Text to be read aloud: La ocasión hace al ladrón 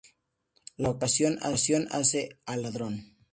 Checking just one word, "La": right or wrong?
right